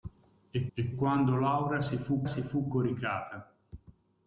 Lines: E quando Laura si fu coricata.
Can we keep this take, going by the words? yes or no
no